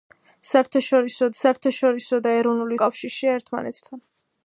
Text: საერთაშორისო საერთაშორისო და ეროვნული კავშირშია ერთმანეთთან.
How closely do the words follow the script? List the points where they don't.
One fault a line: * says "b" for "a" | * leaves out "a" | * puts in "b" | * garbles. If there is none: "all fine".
all fine